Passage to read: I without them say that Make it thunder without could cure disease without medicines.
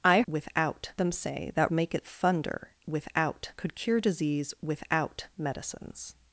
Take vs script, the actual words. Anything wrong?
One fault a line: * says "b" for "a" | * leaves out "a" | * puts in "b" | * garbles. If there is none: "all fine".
all fine